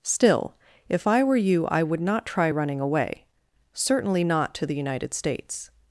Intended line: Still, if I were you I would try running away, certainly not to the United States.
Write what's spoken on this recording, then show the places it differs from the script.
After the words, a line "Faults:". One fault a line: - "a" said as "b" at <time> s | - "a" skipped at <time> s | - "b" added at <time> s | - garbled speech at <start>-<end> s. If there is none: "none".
Still, if I were you I would not try running away, certainly not to the United States.
Faults:
- "not" added at 2.0 s